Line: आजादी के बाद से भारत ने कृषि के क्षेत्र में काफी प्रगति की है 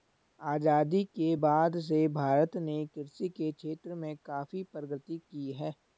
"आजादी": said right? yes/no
yes